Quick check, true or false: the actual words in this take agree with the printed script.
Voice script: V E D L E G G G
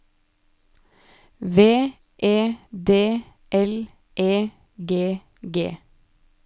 false